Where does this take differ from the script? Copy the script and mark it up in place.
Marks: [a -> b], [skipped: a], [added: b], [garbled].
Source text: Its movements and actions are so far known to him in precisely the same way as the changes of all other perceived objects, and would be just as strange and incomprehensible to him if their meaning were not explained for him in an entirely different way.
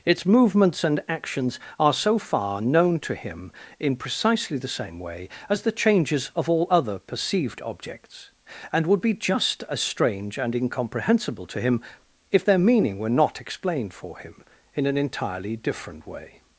Its movements and actions are so far known to him in precisely the same way as the changes of all other perceived objects, and would be just as strange and incomprehensible to him if their meaning were not explained for him in an entirely different way.